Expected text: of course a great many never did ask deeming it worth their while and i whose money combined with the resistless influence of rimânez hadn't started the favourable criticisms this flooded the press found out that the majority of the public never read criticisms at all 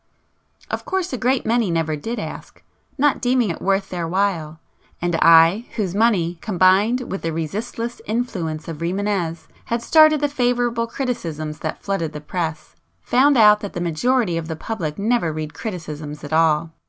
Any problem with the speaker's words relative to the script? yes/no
yes